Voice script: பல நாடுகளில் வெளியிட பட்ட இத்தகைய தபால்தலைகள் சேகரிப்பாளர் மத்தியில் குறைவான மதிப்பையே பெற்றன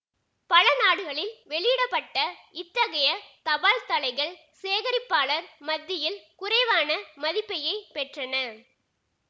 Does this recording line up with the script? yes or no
yes